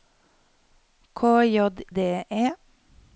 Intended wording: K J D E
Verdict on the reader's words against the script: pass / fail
pass